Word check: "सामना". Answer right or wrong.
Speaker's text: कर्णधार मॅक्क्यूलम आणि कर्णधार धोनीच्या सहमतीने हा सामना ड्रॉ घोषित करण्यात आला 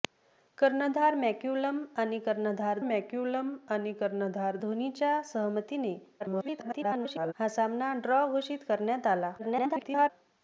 right